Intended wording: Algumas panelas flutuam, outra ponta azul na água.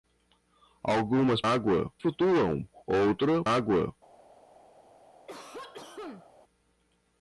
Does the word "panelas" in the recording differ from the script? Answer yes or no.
yes